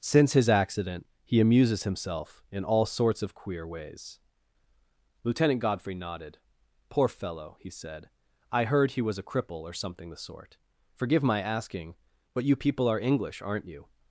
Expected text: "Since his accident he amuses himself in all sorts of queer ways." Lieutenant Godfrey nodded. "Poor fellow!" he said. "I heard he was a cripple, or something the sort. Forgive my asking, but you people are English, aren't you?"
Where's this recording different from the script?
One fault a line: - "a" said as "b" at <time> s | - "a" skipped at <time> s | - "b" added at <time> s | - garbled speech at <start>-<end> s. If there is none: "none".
none